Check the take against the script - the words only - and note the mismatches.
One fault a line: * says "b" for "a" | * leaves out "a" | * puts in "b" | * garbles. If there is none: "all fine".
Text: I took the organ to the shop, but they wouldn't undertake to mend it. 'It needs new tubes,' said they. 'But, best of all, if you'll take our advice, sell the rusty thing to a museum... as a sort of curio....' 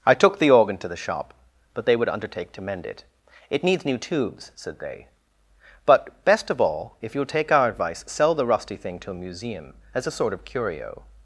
* says "would" for "wouldn't"